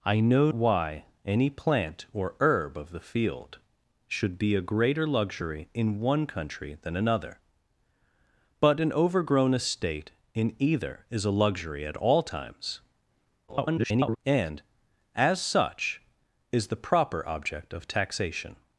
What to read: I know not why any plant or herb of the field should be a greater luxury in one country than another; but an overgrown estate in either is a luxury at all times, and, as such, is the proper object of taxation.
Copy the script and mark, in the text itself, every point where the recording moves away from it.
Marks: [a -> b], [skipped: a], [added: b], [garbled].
I know [skipped: not] why any plant or herb of the field should be a greater luxury in one country than another; but an overgrown estate in either is a luxury at all times, [garbled] and, as such, is the proper object of taxation.